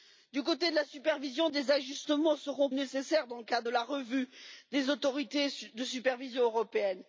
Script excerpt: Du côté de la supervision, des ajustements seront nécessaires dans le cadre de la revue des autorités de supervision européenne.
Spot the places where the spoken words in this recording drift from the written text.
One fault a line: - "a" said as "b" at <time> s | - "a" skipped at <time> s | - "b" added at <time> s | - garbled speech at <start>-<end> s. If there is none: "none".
none